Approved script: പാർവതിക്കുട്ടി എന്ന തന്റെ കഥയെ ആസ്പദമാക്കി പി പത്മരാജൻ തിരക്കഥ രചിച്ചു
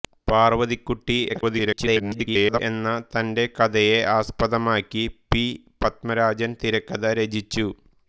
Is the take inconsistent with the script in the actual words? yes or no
yes